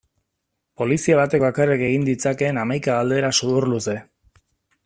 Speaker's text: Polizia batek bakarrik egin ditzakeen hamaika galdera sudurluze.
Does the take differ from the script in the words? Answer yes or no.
no